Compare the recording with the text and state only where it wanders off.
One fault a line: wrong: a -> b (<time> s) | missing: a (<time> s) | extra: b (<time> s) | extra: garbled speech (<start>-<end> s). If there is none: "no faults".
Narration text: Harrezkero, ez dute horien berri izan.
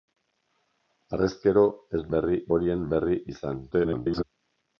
wrong: dute -> berri (2.1 s)
extra: garbled speech (3.7-4.2 s)